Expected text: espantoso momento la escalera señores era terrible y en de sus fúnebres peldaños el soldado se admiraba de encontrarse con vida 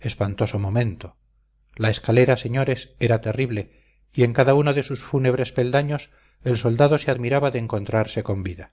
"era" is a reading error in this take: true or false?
false